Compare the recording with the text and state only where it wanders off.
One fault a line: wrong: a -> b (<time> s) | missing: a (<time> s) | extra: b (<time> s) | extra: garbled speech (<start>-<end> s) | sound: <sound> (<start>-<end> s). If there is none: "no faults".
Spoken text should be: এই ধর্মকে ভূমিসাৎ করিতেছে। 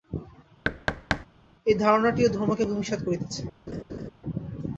sound: thud (0.6-1.3 s)
extra: ধারণাটিও (1.8 s)
sound: laugh (3.7-4.1 s)